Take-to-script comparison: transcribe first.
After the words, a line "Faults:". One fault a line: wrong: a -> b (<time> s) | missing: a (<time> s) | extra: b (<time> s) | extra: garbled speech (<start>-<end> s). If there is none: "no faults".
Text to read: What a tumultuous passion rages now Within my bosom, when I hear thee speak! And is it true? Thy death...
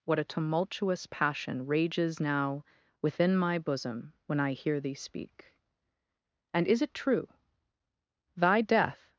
What a tumultuous passion rages now Within my bosom, when I hear thee speak! And is it true? Thy death...
Faults:
no faults